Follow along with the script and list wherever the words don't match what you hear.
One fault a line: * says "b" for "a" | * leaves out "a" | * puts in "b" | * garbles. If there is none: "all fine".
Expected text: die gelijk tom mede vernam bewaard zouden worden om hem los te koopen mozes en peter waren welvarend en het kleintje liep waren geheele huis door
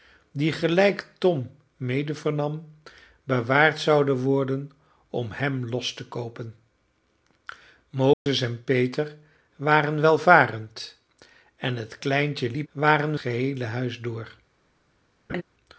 all fine